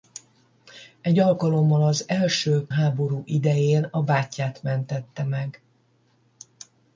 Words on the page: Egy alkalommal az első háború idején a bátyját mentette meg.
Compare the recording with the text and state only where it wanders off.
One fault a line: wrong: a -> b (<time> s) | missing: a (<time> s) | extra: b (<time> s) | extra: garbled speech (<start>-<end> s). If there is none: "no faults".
no faults